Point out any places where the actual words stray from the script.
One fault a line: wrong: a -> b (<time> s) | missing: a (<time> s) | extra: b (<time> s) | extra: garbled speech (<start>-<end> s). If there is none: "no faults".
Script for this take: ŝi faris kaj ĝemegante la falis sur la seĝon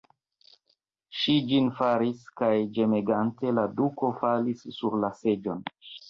extra: ĝin (1.5 s)
extra: duko (3.8 s)